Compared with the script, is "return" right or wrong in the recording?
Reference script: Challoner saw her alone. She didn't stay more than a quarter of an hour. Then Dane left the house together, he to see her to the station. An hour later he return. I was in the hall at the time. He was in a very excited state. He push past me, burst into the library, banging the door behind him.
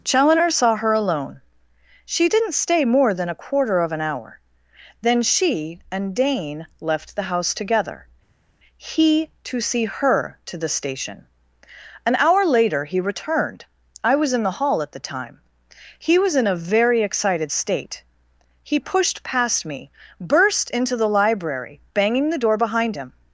wrong